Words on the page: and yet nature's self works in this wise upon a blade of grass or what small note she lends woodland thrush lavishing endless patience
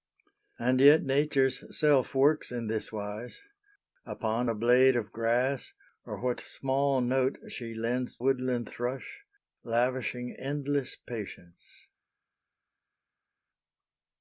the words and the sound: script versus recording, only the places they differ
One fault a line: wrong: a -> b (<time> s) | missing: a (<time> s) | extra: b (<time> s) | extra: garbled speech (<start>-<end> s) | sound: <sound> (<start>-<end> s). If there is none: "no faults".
no faults